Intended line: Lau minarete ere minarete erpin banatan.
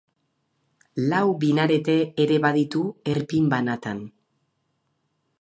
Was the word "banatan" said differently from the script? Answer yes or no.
no